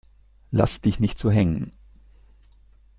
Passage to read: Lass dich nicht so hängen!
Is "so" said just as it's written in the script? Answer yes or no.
yes